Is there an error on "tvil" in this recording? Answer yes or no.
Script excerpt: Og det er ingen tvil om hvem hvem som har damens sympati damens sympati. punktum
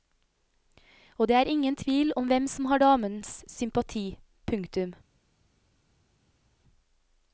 no